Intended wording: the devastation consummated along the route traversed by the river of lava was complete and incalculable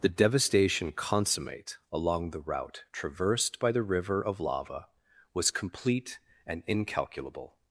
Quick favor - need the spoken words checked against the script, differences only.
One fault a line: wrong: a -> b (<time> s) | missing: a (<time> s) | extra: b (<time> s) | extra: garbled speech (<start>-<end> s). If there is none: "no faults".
wrong: consummated -> consummate (0.9 s)